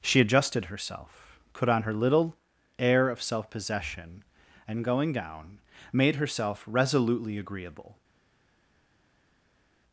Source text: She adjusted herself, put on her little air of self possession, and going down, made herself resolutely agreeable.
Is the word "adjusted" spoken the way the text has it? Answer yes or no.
yes